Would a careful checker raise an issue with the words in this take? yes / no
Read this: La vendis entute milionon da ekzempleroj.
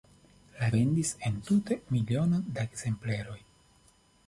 no